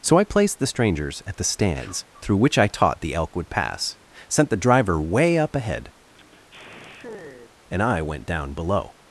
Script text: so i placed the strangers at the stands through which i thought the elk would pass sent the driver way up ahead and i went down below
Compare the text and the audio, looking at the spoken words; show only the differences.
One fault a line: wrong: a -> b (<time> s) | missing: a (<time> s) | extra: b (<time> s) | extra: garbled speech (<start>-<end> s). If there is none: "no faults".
wrong: thought -> taught (2.7 s)